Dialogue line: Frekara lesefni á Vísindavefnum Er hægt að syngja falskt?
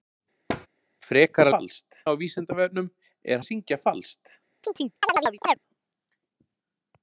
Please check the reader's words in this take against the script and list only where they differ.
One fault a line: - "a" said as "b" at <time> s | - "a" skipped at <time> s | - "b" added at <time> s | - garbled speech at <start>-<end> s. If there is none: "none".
- "lesefni" said as "falskt" at 1.5 s
- "hægt" skipped at 3.4 s